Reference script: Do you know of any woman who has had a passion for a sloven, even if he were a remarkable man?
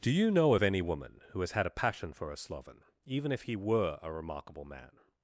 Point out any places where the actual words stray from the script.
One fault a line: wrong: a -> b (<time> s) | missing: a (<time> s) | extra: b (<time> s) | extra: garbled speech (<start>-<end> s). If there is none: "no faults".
no faults